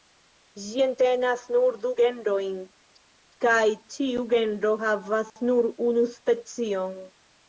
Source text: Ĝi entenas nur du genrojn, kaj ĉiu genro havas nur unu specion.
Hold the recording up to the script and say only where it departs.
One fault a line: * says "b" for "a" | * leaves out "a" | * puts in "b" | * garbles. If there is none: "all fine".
all fine